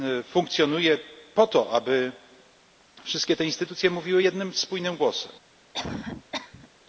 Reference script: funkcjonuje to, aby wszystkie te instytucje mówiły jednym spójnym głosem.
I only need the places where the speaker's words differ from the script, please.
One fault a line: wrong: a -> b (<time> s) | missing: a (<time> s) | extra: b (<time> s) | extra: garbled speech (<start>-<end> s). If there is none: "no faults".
extra: po (1.3 s)